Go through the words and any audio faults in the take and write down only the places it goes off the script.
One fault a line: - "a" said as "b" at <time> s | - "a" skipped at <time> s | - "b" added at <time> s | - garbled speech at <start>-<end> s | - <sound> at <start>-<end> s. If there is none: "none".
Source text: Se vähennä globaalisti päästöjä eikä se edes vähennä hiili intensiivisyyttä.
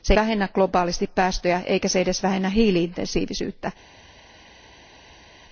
none